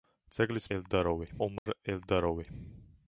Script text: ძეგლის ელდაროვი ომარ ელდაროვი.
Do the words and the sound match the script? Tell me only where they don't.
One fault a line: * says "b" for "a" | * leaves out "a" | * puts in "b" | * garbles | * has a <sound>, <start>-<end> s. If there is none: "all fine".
* has a dropout, 1.6-1.7 s